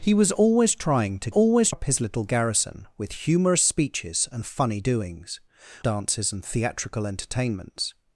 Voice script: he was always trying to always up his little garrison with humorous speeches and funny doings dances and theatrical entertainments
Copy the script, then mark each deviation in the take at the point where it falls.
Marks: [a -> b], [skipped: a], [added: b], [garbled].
he was always trying to always up his little garrison with humorous speeches and funny doings dances and theatrical entertainments